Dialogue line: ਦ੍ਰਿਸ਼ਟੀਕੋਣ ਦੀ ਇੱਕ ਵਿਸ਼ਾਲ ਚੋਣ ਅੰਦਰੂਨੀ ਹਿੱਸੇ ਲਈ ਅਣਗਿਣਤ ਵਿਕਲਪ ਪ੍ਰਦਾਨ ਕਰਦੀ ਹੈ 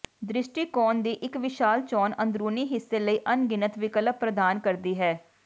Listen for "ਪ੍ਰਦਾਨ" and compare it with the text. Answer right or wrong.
right